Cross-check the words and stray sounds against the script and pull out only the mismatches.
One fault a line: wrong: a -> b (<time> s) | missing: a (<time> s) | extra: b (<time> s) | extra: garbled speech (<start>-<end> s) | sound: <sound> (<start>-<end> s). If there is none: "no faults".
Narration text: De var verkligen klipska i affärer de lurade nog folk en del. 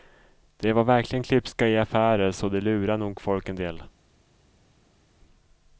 extra: så (2.3 s)